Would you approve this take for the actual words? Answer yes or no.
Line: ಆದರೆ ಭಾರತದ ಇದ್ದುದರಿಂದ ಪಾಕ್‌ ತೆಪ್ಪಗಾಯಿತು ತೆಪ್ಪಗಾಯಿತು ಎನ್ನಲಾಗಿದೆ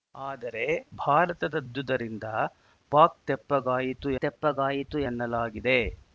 yes